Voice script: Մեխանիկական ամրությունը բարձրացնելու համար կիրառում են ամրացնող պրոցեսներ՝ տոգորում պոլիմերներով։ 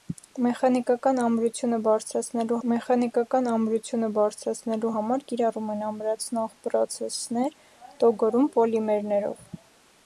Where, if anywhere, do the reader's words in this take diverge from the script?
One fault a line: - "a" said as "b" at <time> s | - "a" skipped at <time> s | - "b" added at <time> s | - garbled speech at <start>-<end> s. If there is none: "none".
- "մեխանիկական ամրությունը բարձրացնելու" added at 2.7 s